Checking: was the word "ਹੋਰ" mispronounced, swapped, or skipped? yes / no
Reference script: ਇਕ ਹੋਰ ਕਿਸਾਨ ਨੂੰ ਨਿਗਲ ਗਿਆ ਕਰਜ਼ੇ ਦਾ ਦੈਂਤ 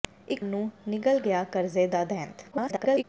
yes